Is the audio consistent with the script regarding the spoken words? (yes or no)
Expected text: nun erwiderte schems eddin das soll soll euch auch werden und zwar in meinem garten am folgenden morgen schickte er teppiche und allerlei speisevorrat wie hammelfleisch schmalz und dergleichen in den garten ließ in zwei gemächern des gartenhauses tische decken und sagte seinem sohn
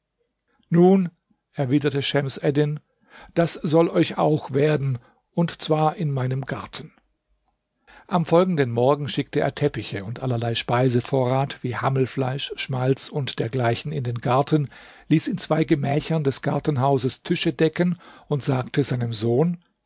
no